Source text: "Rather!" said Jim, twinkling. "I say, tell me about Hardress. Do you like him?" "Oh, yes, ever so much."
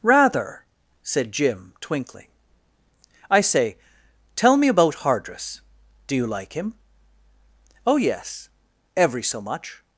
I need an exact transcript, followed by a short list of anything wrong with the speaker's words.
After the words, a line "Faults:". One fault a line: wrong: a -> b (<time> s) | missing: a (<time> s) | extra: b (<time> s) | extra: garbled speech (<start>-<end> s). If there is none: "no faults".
"Rather!" said Jim, twinkling. "I say, tell me about Hardress. Do you like him?" "Oh, yes, every so much."
Faults:
wrong: ever -> every (8.9 s)